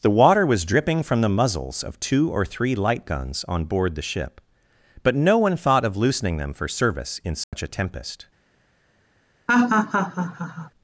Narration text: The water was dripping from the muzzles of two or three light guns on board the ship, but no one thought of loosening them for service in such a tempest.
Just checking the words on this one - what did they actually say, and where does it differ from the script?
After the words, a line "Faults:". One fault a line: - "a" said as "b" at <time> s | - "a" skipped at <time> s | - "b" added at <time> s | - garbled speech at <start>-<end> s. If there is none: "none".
The water was dripping from the muzzles of two or three light guns on board the ship, but no one thought of loosening them for service in such a tempest.
Faults:
none